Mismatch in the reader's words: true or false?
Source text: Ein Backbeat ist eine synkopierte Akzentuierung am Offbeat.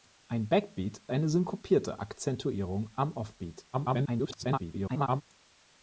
true